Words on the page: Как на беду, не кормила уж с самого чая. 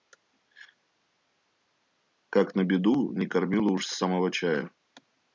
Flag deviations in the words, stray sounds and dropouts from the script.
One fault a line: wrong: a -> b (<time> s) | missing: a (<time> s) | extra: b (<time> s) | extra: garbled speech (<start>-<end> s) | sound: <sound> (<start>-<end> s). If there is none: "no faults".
no faults